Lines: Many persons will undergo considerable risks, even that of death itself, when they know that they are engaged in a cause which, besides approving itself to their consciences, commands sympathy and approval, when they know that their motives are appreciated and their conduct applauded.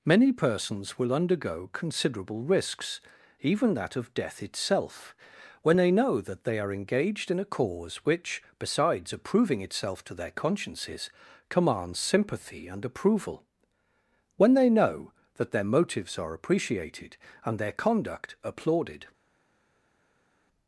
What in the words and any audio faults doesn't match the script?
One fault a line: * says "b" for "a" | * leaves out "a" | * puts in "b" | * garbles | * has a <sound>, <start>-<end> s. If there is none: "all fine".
all fine